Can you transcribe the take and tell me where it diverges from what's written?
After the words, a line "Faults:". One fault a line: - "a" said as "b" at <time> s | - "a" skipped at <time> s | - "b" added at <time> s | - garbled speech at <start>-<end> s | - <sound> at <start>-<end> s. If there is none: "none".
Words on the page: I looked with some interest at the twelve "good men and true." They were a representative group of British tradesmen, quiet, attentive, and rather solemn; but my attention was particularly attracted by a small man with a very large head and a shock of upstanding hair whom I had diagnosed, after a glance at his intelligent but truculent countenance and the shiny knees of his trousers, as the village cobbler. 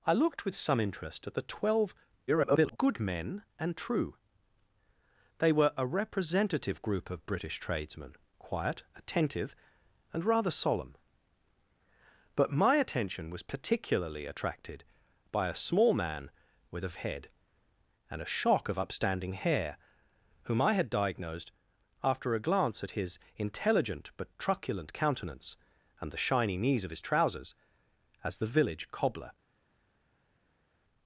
I looked with some interest at the twelve [garbled] "good men and true." They were a representative group of British tradesmen, quiet, attentive, and rather solemn; but my attention was particularly attracted by a small man with a head and a shock of upstanding hair whom I had diagnosed, after a glance at his intelligent but truculent countenance and the shiny knees of his trousers, as the village cobbler.
Faults:
- garbled speech at 2.3-2.8 s
- "very large" skipped at 17.0 s